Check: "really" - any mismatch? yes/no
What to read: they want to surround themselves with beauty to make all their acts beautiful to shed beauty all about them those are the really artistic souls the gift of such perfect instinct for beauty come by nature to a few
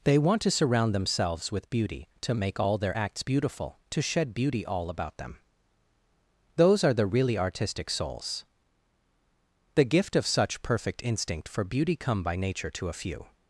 no